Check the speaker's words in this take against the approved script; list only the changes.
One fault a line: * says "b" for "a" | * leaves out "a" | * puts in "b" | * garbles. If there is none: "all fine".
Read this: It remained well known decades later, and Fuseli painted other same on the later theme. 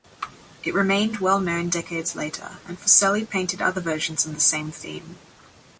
* says "versions" for "same"
* says "same" for "later"